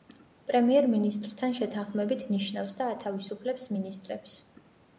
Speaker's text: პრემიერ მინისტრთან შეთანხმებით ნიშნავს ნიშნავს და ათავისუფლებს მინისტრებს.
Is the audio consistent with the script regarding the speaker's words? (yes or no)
no